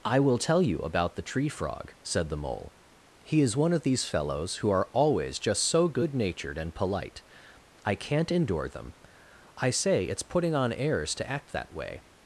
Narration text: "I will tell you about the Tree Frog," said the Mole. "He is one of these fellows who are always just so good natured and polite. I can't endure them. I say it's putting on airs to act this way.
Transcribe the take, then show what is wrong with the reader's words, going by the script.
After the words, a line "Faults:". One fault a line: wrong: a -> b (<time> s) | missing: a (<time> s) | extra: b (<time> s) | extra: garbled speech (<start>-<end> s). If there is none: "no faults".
"I will tell you about the Tree Frog," said the Mole. "He is one of these fellows who are always just so good natured and polite. I can't endure them. I say it's putting on airs to act that way.
Faults:
wrong: this -> that (11.5 s)